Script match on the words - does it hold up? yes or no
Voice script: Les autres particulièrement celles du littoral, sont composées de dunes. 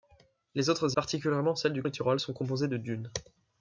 yes